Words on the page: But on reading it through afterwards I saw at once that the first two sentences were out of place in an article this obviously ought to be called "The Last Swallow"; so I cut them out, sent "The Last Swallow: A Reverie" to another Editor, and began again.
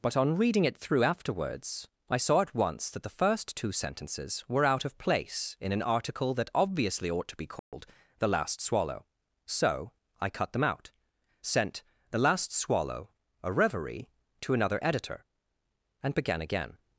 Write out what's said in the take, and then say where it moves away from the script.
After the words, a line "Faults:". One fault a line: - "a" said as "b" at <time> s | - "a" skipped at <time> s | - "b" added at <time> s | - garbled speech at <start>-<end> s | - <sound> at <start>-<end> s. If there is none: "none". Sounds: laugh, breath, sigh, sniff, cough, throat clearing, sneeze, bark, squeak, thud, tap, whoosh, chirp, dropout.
But on reading it through afterwards I saw at once that the first two sentences were out of place in an article that obviously ought to be called "The Last Swallow"; so I cut them out, sent "The Last Swallow: A Reverie" to another Editor, and began again.
Faults:
- "this" said as "that" at 6.3 s
- dropout at 7.6-7.7 s